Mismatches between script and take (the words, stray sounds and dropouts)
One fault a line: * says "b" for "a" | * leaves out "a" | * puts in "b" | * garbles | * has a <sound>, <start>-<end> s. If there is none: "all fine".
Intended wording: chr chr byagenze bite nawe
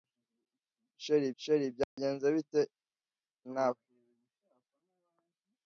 * has a dropout, 1.8-2.0 s